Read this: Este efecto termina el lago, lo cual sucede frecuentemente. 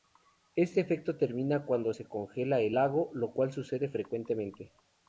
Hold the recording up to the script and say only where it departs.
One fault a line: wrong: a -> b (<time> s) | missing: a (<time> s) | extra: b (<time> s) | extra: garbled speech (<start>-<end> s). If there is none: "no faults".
extra: cuando se congela (1.7 s)